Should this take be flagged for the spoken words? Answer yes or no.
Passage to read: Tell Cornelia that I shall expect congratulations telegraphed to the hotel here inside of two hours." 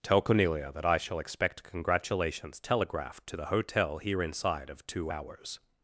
no